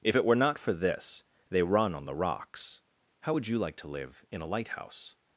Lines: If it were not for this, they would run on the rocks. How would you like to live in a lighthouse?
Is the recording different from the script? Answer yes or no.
yes